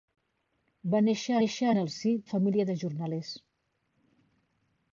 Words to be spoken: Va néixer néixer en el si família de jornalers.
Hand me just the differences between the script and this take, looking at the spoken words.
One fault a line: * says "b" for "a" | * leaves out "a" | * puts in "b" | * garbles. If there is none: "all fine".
all fine